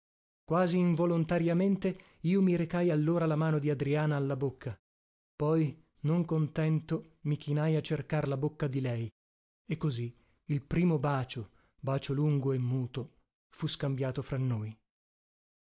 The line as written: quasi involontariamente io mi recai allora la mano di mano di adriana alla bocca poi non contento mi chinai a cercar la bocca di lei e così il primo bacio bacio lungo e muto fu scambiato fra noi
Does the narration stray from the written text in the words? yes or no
yes